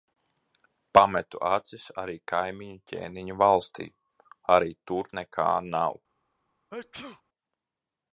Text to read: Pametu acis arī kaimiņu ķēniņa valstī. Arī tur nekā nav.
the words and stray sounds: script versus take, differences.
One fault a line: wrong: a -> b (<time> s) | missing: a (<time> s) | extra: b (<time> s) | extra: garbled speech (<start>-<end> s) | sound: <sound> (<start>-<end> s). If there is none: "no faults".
sound: sneeze (6.7-7.2 s)